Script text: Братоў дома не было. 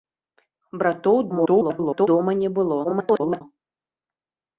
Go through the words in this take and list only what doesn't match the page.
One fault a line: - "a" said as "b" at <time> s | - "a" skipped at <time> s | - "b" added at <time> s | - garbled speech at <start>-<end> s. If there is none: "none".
- garbled speech at 1.3-2.1 s
- garbled speech at 2.8-3.4 s